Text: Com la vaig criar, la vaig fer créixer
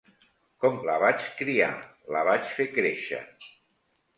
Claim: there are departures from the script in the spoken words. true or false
false